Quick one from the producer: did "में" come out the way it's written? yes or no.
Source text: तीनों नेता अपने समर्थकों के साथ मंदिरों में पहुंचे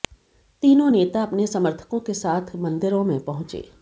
yes